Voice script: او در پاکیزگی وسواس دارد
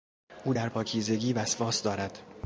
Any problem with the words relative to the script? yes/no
no